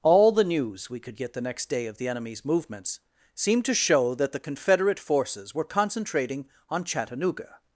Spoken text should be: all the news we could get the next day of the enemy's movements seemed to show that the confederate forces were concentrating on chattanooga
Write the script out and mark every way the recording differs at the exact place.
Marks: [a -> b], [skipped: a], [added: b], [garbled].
all the news we could get the next day of the enemy's movements seemed to show that the confederate forces were concentrating on chattanooga